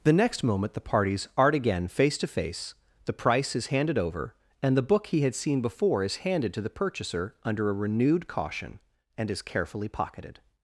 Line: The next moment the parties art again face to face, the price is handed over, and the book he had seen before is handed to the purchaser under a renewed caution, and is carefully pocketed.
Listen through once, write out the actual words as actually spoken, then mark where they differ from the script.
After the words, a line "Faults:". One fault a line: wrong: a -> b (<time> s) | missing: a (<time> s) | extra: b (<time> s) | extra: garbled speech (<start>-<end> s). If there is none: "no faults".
The next moment the parties art again face to face, the price is handed over, and the book he had seen before is handed to the purchaser under a renewed caution, and is carefully pocketed.
Faults:
no faults